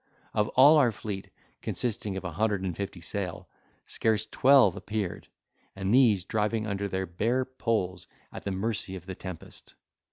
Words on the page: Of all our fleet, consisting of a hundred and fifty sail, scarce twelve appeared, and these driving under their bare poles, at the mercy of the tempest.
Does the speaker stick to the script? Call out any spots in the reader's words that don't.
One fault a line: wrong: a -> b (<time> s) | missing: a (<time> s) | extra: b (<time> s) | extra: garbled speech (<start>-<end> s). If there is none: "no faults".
no faults